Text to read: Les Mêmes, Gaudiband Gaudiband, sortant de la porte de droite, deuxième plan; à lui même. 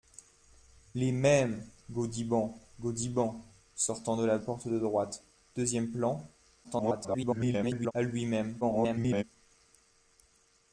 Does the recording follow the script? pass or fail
fail